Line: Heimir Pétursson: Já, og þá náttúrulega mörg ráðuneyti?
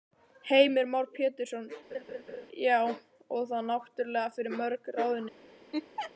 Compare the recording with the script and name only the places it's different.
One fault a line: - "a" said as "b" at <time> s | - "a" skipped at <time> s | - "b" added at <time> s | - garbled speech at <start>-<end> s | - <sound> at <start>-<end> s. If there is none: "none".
- "Már" added at 0.9 s
- laugh at 1.9-2.5 s
- "fyrir" added at 4.4 s
- laugh at 5.7-6.1 s